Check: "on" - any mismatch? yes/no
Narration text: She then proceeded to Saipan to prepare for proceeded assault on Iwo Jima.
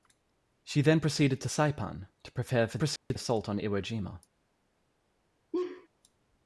no